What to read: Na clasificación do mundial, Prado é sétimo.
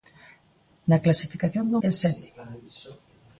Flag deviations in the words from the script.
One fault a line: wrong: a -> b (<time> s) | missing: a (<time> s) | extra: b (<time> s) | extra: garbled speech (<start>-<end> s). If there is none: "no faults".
missing: mundial Prado (1.8 s)